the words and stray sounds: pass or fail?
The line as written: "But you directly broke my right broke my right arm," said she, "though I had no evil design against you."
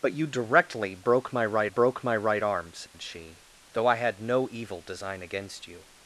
fail